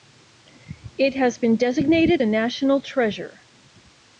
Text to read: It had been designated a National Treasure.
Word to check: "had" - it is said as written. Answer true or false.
false